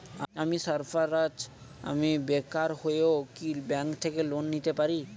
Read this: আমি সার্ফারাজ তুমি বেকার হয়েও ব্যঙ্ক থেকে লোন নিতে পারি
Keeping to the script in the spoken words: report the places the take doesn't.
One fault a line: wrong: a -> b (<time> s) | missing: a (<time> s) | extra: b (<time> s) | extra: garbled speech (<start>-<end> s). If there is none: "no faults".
wrong: তুমি -> আমি (1.8 s)
extra: কি (3.4 s)